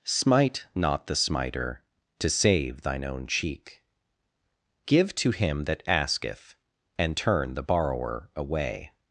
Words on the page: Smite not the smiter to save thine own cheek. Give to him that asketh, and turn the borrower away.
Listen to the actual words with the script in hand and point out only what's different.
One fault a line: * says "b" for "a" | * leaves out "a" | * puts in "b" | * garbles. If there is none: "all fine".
all fine